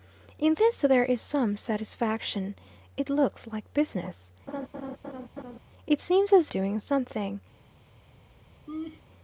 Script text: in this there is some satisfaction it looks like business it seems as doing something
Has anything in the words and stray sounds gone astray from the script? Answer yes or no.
yes